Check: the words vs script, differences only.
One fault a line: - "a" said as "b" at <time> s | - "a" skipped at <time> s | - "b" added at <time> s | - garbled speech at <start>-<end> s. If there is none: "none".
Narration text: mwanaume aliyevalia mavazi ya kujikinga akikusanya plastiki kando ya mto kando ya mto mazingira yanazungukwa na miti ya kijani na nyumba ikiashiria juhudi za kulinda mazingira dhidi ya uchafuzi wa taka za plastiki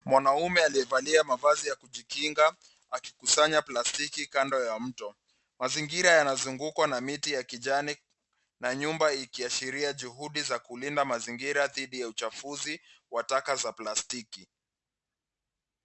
- "kando ya mto" skipped at 5.2 s